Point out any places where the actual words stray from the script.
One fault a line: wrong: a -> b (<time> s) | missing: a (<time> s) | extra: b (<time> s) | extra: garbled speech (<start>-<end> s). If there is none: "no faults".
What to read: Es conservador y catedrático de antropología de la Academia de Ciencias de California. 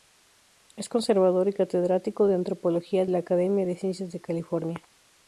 missing: de (3.0 s)